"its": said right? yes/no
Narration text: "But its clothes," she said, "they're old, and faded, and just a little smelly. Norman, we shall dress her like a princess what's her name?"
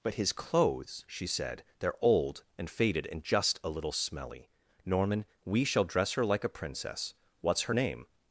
no